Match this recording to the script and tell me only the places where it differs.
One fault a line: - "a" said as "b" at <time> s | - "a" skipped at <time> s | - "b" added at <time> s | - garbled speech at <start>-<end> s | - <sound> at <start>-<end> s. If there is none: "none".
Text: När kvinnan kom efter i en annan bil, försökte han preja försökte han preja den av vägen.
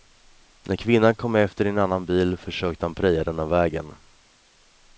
- "försökte han preja" skipped at 3.2 s